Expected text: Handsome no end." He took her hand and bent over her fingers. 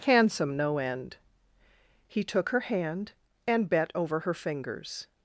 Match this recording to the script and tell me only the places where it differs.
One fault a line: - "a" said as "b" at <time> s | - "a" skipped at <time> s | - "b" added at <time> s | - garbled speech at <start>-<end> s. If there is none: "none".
- "bent" said as "bet" at 3.7 s